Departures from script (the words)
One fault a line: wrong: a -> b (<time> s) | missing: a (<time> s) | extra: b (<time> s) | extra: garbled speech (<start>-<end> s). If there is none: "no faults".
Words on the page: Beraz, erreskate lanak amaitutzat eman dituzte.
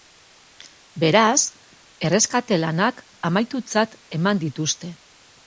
no faults